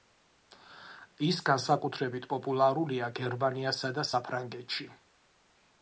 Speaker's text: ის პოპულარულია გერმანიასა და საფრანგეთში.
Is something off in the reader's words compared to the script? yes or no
yes